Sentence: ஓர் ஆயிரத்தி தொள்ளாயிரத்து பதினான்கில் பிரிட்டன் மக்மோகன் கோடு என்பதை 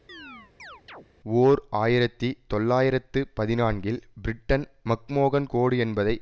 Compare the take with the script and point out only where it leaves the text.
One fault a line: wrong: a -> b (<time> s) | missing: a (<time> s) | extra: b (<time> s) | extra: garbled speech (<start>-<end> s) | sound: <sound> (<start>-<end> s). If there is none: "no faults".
sound: chirp (0.1-1.1 s)